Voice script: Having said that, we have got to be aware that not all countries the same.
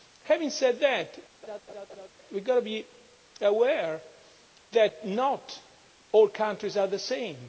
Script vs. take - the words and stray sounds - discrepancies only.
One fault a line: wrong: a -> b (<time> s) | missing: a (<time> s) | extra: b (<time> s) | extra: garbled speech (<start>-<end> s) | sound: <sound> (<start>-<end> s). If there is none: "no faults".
sound: laugh (1.4-2.1 s)
extra: are (6.8 s)